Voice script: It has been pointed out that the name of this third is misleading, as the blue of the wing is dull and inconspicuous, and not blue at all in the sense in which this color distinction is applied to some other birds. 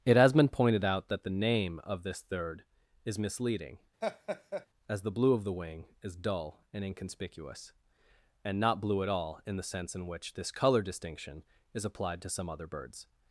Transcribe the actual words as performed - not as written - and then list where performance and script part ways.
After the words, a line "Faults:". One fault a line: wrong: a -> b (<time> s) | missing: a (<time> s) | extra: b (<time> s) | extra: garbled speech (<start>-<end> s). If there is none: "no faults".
It has been pointed out that the name of this third is misleading, as the blue of the wing is dull and inconspicuous, and not blue at all in the sense in which this color distinction is applied to some other birds.
Faults:
no faults